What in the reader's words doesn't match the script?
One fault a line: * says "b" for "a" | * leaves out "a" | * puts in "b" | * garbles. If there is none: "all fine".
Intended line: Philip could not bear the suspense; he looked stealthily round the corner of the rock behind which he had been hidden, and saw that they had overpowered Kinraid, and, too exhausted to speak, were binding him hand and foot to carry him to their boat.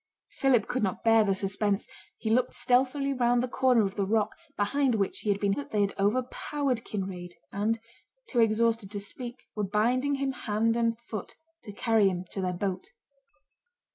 * leaves out "hidden and saw"